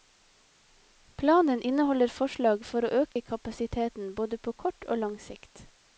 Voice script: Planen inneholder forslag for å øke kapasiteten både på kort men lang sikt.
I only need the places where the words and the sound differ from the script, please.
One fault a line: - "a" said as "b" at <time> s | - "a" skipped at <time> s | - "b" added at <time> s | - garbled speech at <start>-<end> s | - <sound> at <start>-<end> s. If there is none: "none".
- dropout at 3.1-3.2 s
- "men" said as "og" at 4.9 s